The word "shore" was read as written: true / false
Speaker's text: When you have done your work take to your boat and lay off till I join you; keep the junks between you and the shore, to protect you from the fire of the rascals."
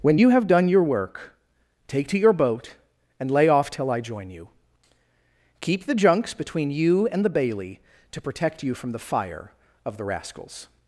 false